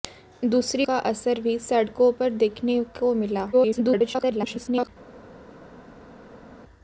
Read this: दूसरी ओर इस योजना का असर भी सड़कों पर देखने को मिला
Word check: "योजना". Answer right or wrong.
wrong